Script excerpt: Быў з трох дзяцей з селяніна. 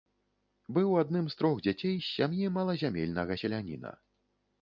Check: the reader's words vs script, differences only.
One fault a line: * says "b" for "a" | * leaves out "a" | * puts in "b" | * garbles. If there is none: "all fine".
* puts in "адным"
* puts in "сям'і малазямельнага"